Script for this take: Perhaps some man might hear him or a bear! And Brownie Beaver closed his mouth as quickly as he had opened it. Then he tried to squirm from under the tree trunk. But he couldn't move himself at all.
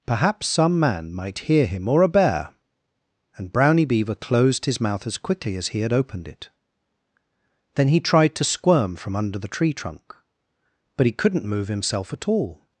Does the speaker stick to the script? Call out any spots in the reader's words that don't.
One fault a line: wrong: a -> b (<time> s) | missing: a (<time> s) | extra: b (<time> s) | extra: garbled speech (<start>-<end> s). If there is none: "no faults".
no faults